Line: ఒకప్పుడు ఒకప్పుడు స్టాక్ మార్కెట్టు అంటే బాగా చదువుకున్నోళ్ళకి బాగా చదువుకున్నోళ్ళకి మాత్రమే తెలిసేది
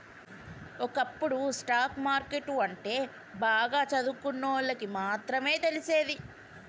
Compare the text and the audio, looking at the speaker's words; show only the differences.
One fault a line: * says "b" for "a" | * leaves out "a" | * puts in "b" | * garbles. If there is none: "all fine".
* leaves out "ఒకప్పుడు"
* leaves out "బాగా చదువుకున్నోళ్ళకి"